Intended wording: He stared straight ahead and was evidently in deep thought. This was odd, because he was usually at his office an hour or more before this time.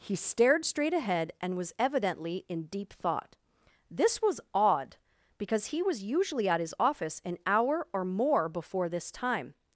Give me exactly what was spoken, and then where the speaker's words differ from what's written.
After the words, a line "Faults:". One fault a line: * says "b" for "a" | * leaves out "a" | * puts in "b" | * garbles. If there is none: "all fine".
He stared straight ahead and was evidently in deep thought. This was odd, because he was usually at his office an hour or more before this time.
Faults:
all fine